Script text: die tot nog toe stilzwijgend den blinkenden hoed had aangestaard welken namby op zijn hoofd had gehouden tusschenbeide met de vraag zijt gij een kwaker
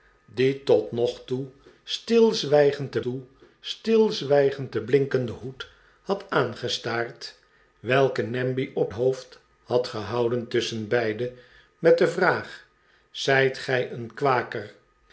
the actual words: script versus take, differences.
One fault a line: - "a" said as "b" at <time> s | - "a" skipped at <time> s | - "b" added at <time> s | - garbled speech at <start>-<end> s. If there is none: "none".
- "toe stilzwijgend den" added at 3.0 s
- "zijn" skipped at 8.9 s